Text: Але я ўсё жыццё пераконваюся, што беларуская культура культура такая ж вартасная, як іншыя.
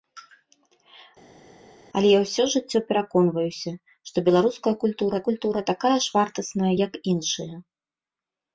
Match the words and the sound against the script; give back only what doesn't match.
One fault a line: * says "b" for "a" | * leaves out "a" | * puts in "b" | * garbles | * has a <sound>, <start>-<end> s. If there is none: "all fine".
all fine